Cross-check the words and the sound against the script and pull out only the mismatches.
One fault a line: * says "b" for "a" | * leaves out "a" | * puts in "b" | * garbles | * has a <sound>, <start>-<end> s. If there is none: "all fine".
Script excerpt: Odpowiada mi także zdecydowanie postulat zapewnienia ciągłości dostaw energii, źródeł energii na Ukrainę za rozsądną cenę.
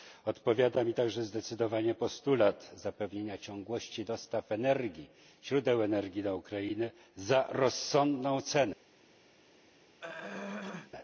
* has a throat clearing, 10.0-10.9 s